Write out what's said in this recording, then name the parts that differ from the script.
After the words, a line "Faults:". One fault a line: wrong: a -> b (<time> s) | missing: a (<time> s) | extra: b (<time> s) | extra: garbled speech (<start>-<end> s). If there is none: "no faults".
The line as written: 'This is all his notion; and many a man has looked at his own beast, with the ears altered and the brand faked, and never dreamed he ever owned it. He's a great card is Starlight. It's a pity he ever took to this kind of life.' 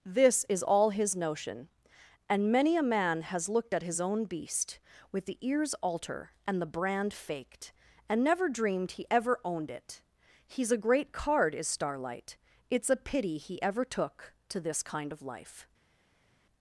'This is all his notion; and many a man has looked at his own beast, with the ears alter and the brand faked, and never dreamed he ever owned it. He's a great card is Starlight. It's a pity he ever took to this kind of life.'
Faults:
wrong: altered -> alter (5.8 s)